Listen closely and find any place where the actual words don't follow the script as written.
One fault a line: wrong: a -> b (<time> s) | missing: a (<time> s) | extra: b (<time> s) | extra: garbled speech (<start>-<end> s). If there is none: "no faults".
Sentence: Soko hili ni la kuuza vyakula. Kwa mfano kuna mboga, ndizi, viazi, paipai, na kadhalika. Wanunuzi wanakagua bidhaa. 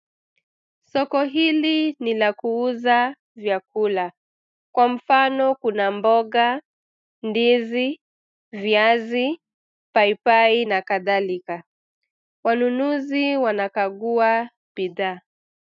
no faults